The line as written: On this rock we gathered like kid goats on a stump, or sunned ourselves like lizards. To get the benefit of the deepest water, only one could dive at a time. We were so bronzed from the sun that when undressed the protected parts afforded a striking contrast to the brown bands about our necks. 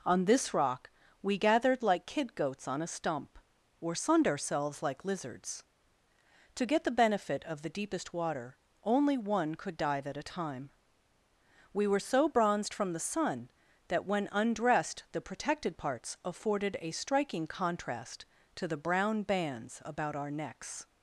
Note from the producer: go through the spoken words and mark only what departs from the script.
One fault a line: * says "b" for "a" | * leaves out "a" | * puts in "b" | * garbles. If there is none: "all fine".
all fine